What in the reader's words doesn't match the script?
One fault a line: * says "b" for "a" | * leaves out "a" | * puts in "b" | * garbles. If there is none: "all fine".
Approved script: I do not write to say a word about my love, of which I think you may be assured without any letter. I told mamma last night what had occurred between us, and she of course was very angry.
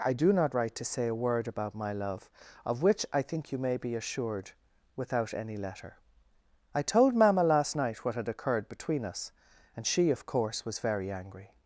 all fine